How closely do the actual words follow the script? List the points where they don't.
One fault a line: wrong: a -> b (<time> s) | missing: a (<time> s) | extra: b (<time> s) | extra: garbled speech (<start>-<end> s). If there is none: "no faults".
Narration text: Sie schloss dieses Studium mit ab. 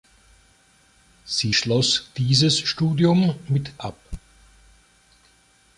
no faults